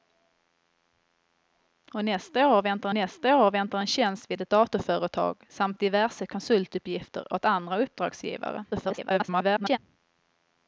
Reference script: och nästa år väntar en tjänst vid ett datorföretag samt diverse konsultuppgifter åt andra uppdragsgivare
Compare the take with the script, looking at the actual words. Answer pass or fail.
fail